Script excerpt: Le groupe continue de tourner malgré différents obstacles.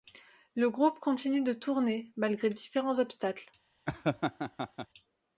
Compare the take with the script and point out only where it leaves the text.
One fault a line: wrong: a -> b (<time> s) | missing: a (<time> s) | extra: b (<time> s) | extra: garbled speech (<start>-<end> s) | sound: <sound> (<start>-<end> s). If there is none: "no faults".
sound: laugh (3.9-4.9 s)